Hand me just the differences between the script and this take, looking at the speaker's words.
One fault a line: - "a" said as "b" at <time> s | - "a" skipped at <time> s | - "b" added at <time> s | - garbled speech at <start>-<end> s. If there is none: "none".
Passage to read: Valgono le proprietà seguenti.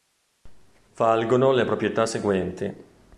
none